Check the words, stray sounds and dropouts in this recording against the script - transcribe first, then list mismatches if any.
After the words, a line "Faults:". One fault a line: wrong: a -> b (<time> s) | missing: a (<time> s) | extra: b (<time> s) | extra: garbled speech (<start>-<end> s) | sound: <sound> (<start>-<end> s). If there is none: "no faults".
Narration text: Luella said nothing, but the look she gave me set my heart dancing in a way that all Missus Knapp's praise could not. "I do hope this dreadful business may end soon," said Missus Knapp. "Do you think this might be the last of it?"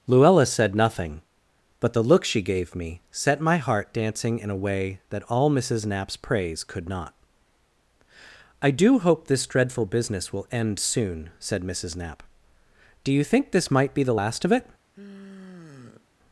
Luella said nothing, but the look she gave me set my heart dancing in a way that all Missus Knapp's praise could not. "I do hope this dreadful business will end soon," said Missus Knapp. "Do you think this might be the last of it?"
Faults:
wrong: may -> will (10.3 s)
sound: sigh (14.9-16.1 s)